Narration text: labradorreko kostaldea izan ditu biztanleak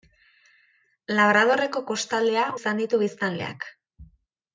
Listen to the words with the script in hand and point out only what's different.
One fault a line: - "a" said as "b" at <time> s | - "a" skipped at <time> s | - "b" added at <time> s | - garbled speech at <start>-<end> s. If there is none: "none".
none